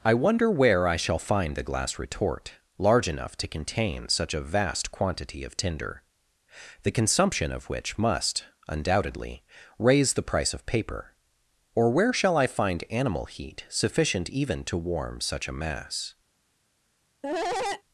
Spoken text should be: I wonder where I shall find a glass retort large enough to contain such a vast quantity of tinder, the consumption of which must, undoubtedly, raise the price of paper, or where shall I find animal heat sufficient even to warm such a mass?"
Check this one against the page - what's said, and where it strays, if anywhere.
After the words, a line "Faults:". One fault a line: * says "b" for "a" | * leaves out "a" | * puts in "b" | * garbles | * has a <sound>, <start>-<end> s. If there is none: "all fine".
I wonder where I shall find a glass retort large enough to contain such a vast quantity of tinder, the consumption of which must, undoubtedly, raise the price of paper, or where shall I find animal heat sufficient even to warm such a mass?"
Faults:
* has a cough, 17.2-17.8 s